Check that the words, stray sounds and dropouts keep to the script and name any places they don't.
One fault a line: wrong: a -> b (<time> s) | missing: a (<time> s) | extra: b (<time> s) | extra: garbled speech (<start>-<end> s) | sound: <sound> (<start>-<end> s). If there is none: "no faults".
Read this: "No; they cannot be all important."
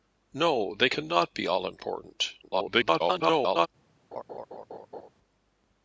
extra: garbled speech (2.4-3.7 s)
sound: laugh (4.1-5.1 s)